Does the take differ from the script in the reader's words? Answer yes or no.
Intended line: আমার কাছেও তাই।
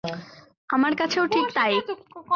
yes